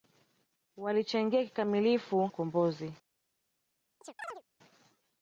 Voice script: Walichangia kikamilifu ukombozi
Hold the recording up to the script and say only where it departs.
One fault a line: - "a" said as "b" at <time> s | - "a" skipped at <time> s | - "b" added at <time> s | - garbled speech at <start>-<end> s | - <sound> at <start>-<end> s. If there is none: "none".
- chirp at 4.0-4.4 s